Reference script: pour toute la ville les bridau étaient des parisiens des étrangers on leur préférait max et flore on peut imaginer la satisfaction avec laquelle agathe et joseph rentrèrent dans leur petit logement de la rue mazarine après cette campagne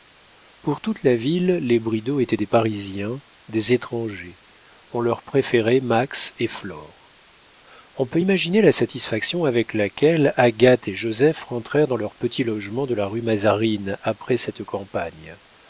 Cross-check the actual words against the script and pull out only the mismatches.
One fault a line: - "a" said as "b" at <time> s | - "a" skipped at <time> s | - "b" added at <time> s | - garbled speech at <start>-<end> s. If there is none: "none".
none